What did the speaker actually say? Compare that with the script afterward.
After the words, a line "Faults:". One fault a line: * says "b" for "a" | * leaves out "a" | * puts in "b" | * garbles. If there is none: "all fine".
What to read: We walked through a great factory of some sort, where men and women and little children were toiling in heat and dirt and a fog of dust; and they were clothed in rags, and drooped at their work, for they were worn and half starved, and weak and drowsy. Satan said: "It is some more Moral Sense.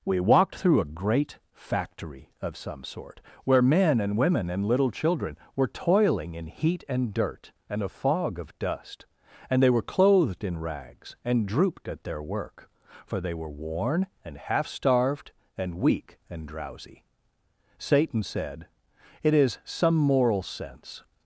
We walked through a great factory of some sort, where men and women and little children were toiling in heat and dirt and a fog of dust; and they were clothed in rags, and drooped at their work, for they were worn and half starved, and weak and drowsy. Satan said: "It is some Moral Sense.
Faults:
* leaves out "more"